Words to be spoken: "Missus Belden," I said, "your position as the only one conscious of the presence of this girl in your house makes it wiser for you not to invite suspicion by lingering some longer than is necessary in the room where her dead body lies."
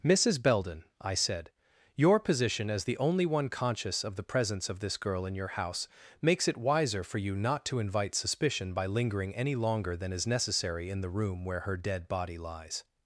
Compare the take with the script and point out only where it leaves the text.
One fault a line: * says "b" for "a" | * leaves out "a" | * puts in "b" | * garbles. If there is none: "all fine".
* says "any" for "some"